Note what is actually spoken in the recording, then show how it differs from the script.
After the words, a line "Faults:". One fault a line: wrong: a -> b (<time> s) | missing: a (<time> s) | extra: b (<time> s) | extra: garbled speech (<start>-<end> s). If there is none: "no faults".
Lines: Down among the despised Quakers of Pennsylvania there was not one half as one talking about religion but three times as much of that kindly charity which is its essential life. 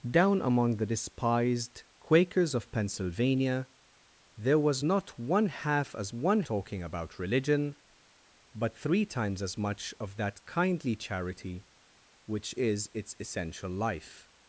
Down among the despised Quakers of Pennsylvania there was not one half as one talking about religion but three times as much of that kindly charity which is its essential life.
Faults:
no faults